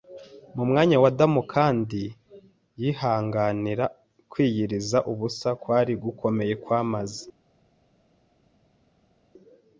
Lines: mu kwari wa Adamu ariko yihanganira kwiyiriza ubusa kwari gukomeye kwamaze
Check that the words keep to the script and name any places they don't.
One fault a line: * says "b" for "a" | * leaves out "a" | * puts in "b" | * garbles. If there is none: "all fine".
* says "mwanya" for "kwari"
* says "kandi" for "ariko"